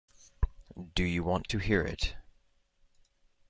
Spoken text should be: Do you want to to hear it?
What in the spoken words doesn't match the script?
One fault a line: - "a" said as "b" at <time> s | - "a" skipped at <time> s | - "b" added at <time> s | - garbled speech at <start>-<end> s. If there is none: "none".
- "to" skipped at 1.6 s